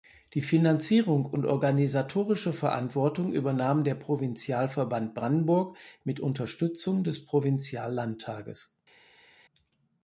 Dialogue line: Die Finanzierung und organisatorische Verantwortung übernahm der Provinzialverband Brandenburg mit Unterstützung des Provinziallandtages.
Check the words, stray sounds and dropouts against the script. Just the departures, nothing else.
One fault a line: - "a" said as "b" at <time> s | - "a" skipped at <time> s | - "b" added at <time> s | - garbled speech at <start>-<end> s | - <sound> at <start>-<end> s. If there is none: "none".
none